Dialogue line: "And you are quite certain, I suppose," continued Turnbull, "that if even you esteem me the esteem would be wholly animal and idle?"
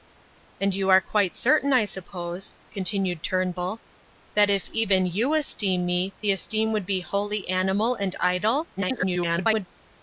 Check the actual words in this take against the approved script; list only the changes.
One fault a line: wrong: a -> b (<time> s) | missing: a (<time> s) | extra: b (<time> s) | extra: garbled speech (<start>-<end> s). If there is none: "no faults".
extra: garbled speech (8.8-9.7 s)